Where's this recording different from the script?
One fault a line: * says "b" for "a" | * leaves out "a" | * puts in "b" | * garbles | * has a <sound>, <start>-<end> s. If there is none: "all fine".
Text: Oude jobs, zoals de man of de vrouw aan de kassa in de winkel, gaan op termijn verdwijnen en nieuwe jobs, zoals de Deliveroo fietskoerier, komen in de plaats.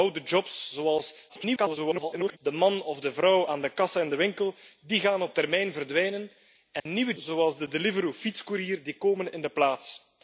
* garbles
* has a dropout, 6.8-6.9 s
* leaves out "jobs"